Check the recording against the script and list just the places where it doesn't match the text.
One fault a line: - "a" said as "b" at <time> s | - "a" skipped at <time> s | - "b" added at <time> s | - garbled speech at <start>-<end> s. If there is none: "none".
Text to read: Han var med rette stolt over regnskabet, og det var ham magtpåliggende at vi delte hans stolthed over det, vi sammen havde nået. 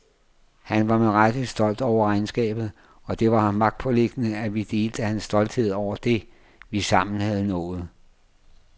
none